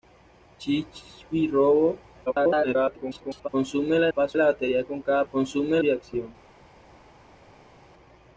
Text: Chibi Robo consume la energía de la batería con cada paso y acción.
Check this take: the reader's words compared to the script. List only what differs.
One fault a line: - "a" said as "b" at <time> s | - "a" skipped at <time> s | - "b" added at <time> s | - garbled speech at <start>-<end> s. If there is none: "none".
- garbled speech at 2.3-3.5 s
- "energía" said as "paso" at 4.1 s
- "paso" said as "consume" at 5.3 s